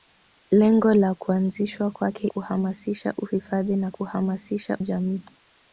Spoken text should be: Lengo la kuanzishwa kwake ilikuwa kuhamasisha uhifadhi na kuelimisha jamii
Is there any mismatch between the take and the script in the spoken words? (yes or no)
yes